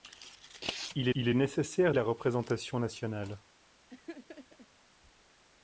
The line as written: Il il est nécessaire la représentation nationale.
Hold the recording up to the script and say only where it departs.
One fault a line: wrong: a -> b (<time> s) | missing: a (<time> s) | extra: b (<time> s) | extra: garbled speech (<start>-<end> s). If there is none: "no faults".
no faults